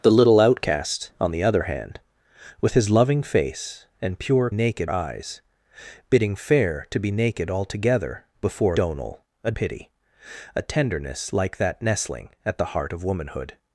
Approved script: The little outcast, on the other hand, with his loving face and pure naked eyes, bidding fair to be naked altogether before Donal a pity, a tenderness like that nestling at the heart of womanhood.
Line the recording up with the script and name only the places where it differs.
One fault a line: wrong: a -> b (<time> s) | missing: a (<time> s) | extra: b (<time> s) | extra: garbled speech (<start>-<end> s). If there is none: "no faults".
no faults